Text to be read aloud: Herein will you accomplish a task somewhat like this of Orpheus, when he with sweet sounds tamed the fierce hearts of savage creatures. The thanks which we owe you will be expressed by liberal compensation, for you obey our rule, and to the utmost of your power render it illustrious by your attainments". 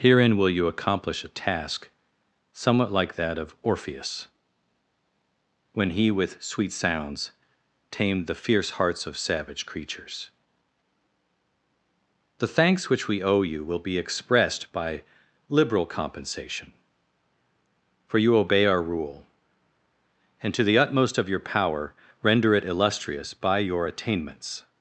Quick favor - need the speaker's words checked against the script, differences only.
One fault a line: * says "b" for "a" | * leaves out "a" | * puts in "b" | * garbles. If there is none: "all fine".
* says "that" for "this"